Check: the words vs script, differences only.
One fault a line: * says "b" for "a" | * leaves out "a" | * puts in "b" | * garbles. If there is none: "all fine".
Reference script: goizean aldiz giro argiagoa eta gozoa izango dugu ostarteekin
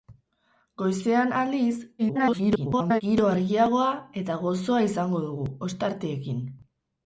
* garbles